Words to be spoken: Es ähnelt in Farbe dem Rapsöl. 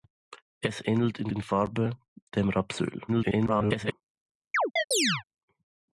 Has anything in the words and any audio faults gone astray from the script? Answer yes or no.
yes